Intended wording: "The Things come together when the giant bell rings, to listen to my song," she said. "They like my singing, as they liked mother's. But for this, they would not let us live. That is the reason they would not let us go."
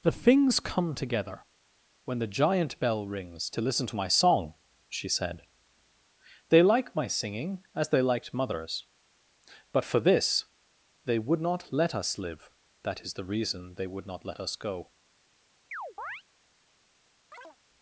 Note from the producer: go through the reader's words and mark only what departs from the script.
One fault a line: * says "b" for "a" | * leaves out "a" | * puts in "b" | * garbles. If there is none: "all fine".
all fine